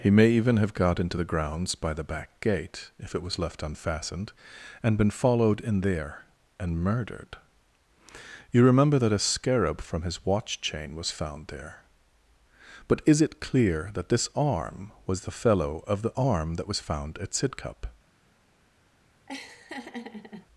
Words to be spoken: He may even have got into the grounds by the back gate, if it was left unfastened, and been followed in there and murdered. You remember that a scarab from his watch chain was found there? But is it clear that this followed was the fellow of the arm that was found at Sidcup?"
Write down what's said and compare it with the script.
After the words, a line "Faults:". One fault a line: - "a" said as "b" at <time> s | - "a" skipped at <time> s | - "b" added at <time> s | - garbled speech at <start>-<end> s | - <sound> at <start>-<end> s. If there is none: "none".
He may even have got into the grounds by the back gate, if it was left unfastened, and been followed in there and murdered. You remember that a scarab from his watch chain was found there? But is it clear that this arm was the fellow of the arm that was found at Sidcup?"
Faults:
- "followed" said as "arm" at 14.4 s
- laugh at 19.3-20.5 s